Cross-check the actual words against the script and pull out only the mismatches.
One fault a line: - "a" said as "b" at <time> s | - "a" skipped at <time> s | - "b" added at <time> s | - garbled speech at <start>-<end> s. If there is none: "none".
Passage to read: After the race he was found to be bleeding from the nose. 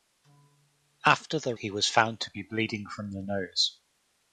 - "race" skipped at 1.6 s